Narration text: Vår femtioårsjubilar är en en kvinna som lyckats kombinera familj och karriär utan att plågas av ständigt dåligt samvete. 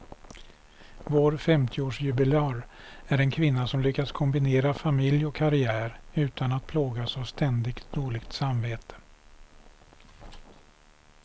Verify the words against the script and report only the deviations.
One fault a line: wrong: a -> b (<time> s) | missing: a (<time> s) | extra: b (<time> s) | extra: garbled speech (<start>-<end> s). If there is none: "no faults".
missing: en (3.3 s)